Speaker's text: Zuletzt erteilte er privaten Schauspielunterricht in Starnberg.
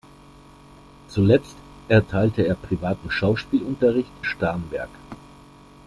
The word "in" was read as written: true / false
false